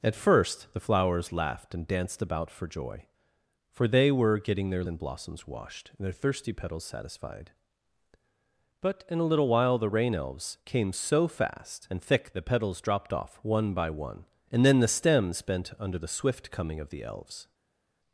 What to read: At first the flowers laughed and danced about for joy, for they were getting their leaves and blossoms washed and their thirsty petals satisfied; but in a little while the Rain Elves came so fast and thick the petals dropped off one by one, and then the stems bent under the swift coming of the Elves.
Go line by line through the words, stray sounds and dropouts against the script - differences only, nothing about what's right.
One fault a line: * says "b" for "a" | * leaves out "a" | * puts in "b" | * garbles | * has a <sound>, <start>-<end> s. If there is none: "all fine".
* leaves out "leaves"